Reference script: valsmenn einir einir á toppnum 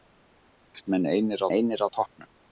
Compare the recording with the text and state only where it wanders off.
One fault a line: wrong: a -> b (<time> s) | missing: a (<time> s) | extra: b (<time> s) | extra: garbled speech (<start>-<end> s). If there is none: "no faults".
no faults